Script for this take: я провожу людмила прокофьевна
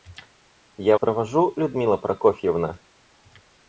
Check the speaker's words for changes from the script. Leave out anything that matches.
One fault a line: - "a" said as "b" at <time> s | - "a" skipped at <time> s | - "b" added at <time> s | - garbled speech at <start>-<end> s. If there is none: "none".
none